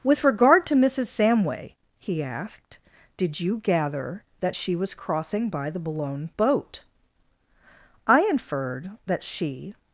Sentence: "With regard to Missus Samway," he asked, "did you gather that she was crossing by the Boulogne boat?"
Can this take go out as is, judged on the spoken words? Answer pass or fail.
fail